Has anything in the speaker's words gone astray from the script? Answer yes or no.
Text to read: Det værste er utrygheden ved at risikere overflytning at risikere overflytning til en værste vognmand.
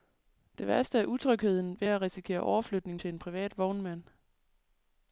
yes